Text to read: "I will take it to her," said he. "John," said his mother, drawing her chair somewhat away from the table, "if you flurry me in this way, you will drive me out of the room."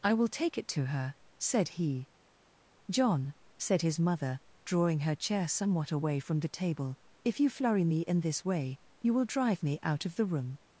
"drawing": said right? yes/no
yes